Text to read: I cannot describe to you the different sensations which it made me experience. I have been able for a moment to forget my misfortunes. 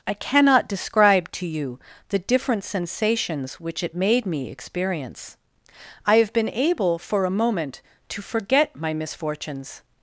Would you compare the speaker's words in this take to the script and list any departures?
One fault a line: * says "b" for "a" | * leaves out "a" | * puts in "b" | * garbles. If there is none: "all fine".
all fine